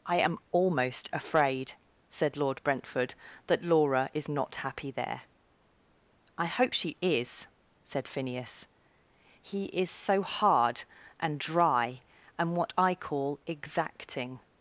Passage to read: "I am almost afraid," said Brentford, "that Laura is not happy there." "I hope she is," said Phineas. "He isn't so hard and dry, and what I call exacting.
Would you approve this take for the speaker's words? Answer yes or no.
no